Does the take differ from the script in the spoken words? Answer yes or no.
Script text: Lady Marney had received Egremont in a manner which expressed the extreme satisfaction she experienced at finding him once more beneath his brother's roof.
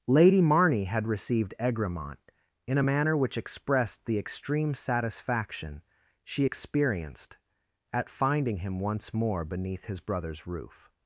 no